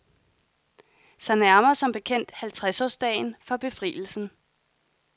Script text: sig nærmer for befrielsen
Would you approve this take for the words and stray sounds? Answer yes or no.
no